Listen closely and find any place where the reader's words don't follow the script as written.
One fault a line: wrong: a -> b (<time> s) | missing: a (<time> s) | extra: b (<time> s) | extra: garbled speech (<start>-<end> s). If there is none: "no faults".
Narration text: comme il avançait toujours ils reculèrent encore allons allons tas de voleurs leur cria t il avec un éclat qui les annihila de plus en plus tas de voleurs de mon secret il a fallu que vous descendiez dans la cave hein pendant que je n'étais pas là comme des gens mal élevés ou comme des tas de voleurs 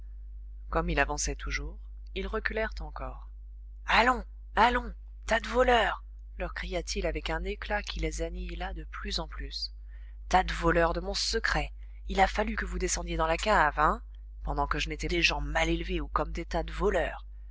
missing: pas là comme (15.1 s)